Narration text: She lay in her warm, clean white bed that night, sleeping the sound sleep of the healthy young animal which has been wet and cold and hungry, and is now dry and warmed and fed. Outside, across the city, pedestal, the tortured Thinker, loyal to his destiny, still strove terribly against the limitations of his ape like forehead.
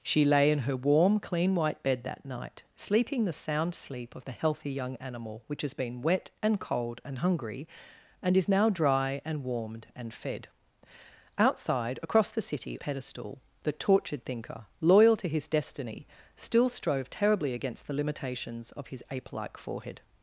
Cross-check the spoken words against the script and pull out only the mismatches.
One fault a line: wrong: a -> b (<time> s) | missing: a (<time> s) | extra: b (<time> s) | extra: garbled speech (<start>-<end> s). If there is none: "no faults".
no faults